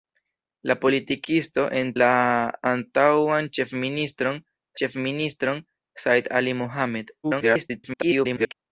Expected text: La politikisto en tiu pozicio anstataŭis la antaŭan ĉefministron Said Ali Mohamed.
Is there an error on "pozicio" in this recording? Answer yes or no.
yes